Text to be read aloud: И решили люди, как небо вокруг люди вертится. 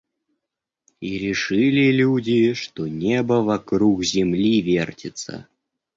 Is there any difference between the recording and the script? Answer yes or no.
yes